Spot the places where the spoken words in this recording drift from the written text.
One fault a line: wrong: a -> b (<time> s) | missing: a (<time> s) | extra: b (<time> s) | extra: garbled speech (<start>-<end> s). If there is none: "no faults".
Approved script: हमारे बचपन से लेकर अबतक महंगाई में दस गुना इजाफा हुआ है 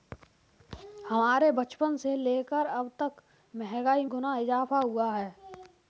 missing: में दस (4.0 s)